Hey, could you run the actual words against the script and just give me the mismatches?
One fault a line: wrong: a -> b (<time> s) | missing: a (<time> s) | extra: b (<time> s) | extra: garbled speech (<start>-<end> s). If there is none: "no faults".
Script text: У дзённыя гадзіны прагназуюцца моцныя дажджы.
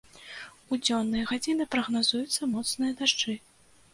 no faults